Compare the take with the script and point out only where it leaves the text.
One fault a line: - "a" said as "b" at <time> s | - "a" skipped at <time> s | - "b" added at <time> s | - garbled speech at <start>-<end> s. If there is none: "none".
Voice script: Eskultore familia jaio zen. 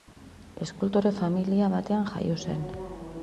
- "batean" added at 1.8 s